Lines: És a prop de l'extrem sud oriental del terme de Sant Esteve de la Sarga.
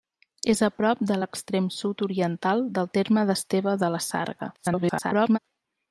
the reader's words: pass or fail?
fail